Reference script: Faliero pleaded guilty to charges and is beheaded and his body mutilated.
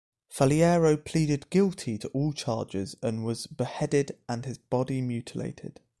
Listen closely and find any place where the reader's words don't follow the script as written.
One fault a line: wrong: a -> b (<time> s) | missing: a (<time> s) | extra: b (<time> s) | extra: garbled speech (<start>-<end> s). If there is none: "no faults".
extra: all (2.1 s)
wrong: is -> was (3.2 s)